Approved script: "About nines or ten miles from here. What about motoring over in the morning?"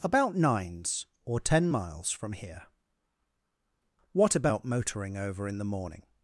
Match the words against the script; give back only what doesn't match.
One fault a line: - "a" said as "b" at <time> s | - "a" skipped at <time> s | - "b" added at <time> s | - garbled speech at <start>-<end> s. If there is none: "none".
none